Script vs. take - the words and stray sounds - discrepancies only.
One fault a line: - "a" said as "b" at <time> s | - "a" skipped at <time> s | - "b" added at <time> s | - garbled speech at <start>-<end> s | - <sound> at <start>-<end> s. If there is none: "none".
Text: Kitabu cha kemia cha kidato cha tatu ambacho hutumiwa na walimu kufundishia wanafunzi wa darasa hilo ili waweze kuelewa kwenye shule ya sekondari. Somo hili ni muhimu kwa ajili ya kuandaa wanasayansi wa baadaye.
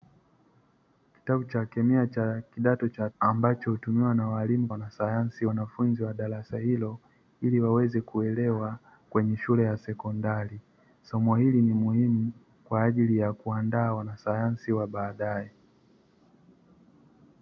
- "tatu" skipped at 3.1 s
- "kufundishia" said as "wanasayansi" at 4.7 s